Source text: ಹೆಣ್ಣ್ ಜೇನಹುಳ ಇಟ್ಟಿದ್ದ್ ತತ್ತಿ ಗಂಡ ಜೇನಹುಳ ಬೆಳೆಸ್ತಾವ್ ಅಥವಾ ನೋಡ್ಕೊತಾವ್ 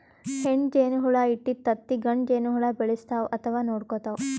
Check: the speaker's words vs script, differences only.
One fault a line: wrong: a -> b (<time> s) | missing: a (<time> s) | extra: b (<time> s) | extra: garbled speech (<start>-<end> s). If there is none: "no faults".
no faults